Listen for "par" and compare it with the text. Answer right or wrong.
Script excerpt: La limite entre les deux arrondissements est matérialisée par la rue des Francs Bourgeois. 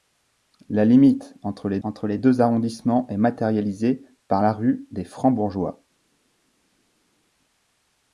right